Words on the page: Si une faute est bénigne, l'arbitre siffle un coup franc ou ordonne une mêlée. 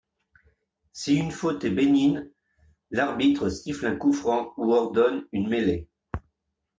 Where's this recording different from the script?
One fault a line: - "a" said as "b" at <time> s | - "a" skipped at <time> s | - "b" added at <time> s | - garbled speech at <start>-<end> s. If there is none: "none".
none